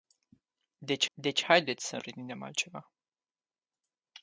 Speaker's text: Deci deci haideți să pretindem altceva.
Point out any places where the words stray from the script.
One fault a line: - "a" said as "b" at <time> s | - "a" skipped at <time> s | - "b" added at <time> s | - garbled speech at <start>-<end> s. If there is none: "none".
none